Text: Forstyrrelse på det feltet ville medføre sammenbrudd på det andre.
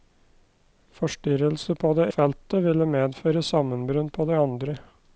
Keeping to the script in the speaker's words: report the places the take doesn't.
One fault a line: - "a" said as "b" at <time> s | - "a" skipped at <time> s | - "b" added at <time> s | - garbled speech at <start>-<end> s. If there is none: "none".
none